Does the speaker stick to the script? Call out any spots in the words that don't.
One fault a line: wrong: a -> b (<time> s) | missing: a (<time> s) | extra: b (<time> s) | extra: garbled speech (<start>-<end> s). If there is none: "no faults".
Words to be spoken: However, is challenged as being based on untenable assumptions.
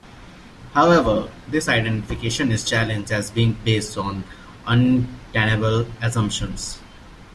extra: this identification (1.5 s)